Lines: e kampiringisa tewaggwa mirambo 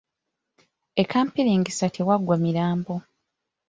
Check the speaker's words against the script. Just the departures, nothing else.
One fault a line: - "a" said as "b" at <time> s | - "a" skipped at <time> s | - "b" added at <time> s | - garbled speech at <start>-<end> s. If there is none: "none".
none